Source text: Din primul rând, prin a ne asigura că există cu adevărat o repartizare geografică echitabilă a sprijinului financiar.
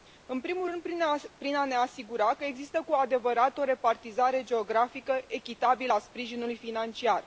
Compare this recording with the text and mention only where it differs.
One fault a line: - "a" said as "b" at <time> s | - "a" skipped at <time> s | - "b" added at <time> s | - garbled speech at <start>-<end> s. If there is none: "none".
- "Din" said as "În" at 0.2 s